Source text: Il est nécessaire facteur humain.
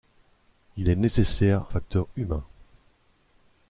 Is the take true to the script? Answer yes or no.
yes